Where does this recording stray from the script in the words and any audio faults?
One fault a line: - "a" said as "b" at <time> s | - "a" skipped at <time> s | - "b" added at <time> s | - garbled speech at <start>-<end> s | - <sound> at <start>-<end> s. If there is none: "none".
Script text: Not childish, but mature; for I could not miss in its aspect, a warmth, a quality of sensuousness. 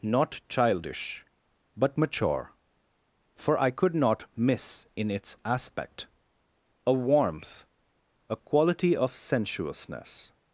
none